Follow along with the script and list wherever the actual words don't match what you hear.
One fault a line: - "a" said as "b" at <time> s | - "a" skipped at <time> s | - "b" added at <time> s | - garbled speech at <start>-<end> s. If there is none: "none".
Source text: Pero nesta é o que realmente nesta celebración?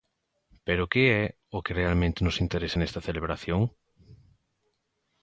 - "nesta" said as "que" at 0.9 s
- "nos interesa" added at 2.2 s